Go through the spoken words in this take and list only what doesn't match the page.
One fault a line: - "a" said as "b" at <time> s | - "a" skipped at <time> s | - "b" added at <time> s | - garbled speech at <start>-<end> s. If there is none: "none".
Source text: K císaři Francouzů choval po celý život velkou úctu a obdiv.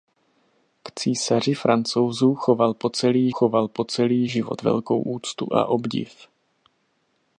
- "choval po celý" added at 3.3 s